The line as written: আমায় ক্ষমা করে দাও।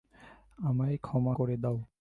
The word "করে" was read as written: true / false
true